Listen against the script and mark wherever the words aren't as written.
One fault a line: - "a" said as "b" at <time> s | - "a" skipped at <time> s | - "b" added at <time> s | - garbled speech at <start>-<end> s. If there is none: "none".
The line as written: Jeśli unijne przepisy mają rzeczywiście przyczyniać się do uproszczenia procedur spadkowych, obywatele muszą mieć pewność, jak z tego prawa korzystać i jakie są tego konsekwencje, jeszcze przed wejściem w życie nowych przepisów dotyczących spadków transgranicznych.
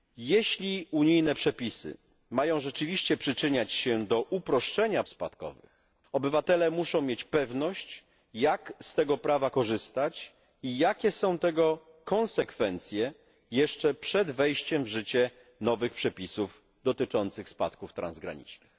- "procedur" skipped at 5.0 s